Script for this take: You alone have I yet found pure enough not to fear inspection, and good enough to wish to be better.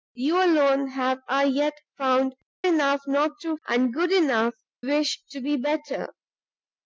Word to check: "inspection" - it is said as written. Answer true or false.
false